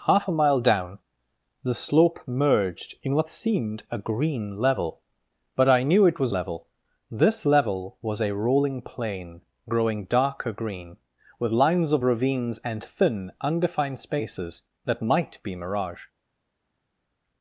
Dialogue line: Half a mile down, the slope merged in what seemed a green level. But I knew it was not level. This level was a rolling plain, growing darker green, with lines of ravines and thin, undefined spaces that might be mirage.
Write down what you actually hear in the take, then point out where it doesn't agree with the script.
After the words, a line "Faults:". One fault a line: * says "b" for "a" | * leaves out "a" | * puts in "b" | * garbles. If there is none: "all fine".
Half a mile down, the slope merged in what seemed a green level. But I knew it was level. This level was a rolling plain, growing darker green, with lines of ravines and thin, undefined spaces that might be mirage.
Faults:
* leaves out "not"